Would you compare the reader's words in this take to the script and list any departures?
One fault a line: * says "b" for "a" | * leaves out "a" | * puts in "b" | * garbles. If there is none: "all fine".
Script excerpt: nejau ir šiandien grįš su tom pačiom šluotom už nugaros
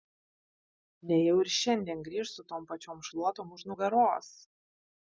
all fine